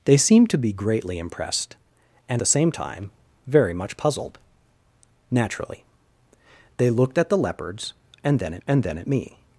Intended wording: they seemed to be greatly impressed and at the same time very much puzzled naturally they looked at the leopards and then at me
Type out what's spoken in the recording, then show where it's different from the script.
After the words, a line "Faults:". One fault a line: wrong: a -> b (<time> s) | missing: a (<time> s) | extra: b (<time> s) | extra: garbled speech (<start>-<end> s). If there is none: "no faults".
they seemed to be greatly impressed and the same time very much puzzled naturally they looked at the leopards and then at and then at me
Faults:
missing: at (2.4 s)
extra: and then at (8.7 s)